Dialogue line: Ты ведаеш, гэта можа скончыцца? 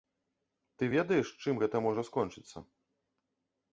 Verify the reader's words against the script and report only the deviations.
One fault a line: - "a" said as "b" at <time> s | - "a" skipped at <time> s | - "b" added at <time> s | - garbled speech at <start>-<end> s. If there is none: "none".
- "чым" added at 1.5 s